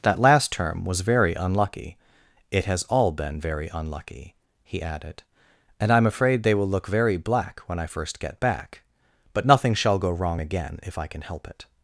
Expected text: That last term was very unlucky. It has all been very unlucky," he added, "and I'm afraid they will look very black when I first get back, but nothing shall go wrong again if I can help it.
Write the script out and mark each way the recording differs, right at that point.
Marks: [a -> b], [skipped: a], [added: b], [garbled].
That last term was very unlucky. It has all been very unlucky," he added, "and I'm afraid they will look very black when I first get back, but nothing shall go wrong again if I can help it.